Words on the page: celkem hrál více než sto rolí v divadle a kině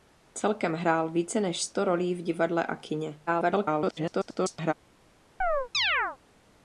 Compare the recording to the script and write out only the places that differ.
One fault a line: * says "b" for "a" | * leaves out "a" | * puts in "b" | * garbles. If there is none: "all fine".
* garbles